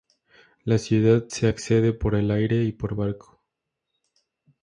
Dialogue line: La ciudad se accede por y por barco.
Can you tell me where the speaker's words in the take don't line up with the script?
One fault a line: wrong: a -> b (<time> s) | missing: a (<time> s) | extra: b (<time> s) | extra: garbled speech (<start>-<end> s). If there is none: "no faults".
extra: el aire (2.1 s)